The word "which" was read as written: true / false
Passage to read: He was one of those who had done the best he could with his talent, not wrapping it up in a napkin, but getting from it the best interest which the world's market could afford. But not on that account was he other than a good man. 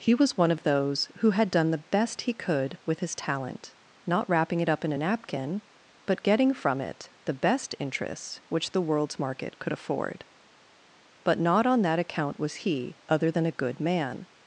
true